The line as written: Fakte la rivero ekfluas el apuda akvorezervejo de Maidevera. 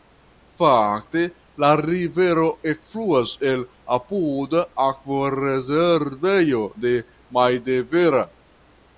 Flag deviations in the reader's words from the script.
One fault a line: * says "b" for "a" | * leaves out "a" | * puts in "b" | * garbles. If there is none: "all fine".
all fine